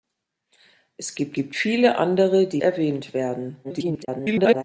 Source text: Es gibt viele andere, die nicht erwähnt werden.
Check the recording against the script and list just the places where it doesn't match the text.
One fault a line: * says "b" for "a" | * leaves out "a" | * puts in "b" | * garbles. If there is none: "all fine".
* puts in "gibt"
* leaves out "nicht"
* garbles